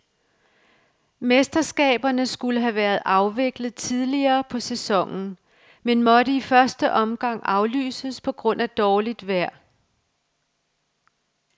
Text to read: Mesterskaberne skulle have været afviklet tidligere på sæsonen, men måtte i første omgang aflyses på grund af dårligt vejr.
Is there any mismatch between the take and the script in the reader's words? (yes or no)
no